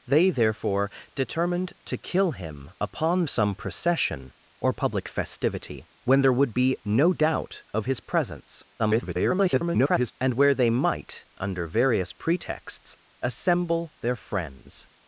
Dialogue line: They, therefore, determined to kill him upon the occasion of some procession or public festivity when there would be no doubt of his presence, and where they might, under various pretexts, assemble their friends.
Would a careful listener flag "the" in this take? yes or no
yes